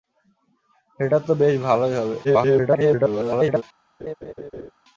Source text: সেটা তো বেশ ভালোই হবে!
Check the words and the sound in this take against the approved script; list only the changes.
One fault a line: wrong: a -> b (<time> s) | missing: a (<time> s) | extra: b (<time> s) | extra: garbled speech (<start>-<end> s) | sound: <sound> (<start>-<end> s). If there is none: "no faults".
extra: garbled speech (2.2-3.6 s)
sound: laugh (4.0-4.7 s)